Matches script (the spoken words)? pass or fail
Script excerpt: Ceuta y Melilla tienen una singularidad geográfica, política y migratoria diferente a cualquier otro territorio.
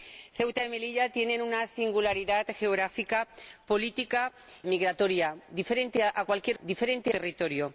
fail